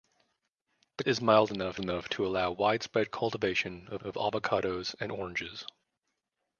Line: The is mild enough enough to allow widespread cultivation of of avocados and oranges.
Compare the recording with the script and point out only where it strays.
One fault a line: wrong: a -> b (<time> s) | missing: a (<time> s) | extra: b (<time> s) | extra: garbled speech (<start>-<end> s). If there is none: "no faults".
no faults